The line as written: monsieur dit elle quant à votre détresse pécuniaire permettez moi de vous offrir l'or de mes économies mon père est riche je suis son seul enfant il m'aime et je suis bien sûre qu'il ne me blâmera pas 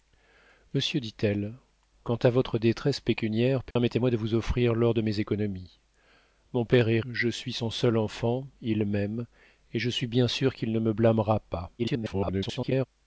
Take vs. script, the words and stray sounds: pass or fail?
fail